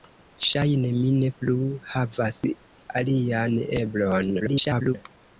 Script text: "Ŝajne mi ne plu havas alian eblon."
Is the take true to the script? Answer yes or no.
no